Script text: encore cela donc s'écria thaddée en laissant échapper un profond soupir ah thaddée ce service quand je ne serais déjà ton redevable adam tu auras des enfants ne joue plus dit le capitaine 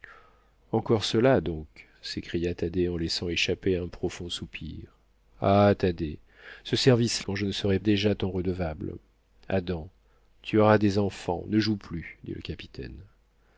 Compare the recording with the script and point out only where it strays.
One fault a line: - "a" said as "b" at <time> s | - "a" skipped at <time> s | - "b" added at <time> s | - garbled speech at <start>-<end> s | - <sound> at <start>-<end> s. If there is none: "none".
none